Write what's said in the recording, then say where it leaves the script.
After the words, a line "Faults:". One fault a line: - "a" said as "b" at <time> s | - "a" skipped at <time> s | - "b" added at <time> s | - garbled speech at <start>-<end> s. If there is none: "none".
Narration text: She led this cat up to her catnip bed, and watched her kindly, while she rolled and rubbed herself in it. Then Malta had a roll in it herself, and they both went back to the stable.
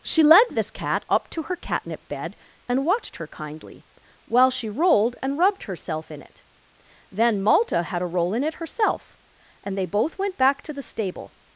She led this cat up to her catnip bed, and watched her kindly, while she rolled and rubbed herself in it. Then Malta had a roll in it herself, and they both went back to the stable.
Faults:
none